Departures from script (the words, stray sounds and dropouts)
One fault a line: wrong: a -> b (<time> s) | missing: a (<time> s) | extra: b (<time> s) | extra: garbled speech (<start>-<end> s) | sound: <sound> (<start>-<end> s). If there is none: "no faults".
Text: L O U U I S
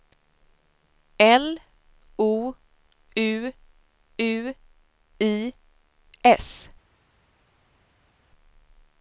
no faults